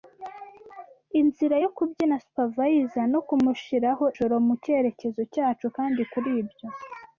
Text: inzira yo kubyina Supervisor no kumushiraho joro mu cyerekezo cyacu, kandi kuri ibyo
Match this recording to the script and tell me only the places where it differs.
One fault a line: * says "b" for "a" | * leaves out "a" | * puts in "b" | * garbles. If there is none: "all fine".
all fine